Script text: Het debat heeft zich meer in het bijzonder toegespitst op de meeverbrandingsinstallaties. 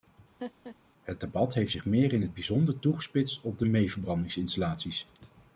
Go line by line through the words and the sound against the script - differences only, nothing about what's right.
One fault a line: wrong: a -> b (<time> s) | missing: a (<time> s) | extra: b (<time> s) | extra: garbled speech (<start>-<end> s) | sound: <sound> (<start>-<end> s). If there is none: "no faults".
sound: laugh (0.4-0.8 s)